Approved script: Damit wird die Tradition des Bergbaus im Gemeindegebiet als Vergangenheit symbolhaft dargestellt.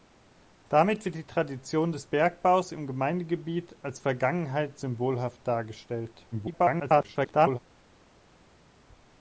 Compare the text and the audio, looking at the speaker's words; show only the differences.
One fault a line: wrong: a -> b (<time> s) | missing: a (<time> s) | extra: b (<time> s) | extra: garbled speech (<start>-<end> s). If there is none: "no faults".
extra: garbled speech (6.3-7.6 s)